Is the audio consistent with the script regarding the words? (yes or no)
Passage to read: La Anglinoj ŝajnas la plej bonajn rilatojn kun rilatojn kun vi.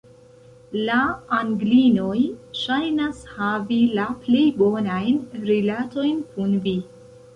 no